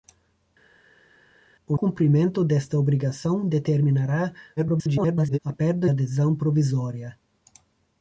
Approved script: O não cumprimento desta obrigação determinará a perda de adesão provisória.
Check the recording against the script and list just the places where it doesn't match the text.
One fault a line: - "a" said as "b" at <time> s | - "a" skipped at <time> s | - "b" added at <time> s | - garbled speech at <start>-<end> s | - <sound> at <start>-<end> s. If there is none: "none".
- "não" skipped at 1.8 s
- garbled speech at 4.6-5.4 s
- "de" skipped at 5.9 s